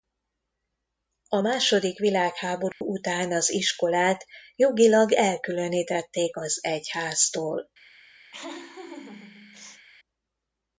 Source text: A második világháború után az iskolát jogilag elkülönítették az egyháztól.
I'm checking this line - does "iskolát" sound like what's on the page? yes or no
yes